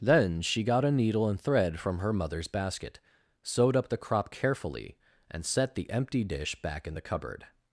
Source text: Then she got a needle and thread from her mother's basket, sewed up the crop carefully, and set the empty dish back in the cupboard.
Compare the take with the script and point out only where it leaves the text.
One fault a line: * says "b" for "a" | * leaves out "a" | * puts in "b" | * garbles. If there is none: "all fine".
all fine